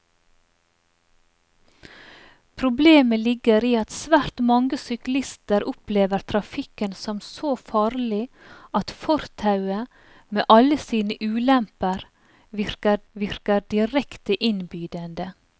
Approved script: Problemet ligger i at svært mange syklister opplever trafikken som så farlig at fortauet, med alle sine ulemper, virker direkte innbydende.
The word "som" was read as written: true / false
true